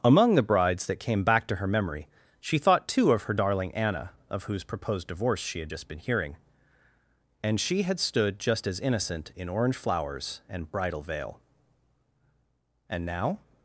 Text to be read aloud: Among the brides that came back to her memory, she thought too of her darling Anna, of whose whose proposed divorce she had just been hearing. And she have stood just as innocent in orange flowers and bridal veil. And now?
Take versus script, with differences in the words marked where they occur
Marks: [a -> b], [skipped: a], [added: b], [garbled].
Among the brides that came back to her memory, she thought too of her darling Anna, of whose [skipped: whose] proposed divorce she had just been hearing. And she [have -> had] stood just as innocent in orange flowers and bridal veil. And now?